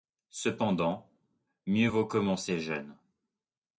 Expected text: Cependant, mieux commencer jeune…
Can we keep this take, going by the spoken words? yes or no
no